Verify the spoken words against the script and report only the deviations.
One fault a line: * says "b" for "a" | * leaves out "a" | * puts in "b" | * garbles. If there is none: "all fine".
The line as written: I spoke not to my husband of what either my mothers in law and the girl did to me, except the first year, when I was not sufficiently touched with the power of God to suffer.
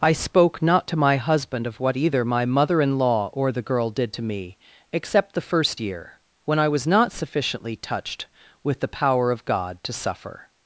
* says "mother" for "mothers"
* says "or" for "and"